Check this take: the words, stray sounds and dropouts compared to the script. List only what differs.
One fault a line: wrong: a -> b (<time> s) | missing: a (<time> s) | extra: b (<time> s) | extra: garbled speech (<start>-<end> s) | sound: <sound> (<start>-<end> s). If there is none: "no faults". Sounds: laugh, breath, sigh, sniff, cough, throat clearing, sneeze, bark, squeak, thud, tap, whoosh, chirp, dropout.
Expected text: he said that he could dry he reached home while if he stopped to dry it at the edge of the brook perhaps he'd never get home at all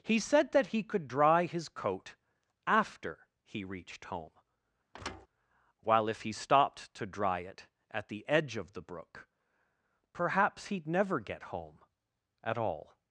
extra: his coat after (1.4 s)
sound: thud (4.9-5.3 s)